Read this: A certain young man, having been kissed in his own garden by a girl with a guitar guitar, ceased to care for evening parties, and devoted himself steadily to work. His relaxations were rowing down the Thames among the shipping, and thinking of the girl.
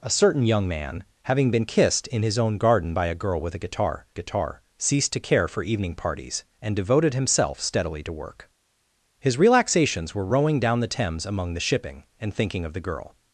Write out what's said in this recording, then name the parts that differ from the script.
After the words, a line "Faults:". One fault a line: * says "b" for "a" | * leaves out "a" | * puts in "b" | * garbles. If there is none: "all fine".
A certain young man, having been kissed in his own garden by a girl with a guitar guitar, ceased to care for evening parties, and devoted himself steadily to work. His relaxations were rowing down the Thames among the shipping, and thinking of the girl.
Faults:
all fine